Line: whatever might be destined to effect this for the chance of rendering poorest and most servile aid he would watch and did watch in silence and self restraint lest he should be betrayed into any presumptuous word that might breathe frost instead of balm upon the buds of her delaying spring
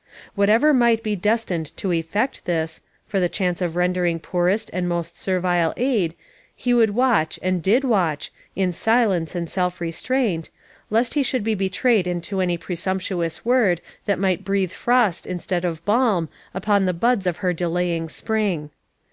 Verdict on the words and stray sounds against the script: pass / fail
pass